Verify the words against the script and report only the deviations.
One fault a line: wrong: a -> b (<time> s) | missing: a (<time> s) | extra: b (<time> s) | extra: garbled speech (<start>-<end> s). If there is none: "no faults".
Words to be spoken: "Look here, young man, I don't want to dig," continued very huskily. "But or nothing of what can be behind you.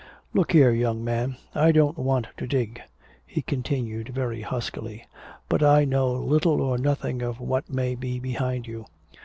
extra: he (3.3 s)
extra: I know little (5.6 s)
wrong: can -> may (7.7 s)